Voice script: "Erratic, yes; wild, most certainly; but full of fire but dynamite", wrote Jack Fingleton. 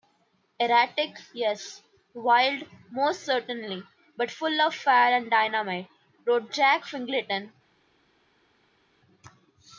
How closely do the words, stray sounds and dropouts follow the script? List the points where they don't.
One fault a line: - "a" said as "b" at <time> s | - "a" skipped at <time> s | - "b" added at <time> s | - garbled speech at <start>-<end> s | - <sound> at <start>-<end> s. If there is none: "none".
- "but" said as "and" at 5.1 s